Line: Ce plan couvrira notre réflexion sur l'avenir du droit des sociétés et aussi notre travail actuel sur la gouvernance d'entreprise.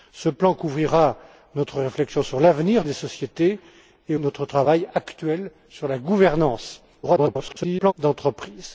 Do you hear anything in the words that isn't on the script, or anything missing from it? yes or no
yes